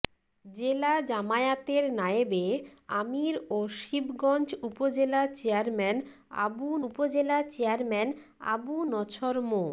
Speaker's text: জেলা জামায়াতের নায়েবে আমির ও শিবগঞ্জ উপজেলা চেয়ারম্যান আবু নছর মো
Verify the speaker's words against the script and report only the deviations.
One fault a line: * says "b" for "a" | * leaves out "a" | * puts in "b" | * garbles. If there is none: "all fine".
* puts in "উপজেলা চেয়ারম্যান আবু"